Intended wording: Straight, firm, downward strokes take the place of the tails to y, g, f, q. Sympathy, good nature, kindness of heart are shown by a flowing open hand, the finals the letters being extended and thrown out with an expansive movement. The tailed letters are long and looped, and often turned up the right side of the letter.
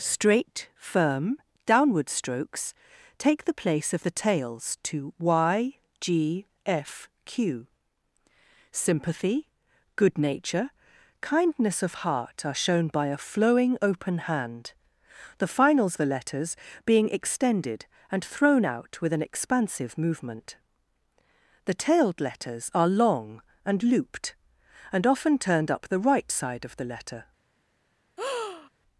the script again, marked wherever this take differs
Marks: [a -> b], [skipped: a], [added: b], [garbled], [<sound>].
Straight, firm, downward strokes take the place of the tails to y, g, f, q. Sympathy, good nature, kindness of heart are shown by a flowing open hand, the finals the letters being extended and thrown out with an expansive movement. The tailed letters are long and looped, and often turned up the right side of the letter. [breath]